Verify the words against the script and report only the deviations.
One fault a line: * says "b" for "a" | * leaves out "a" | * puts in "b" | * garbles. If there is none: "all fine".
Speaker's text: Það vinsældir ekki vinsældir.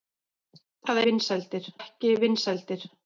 all fine